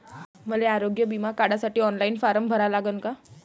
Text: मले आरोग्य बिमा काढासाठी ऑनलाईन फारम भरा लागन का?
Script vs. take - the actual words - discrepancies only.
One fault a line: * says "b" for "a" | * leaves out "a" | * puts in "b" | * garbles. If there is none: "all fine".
all fine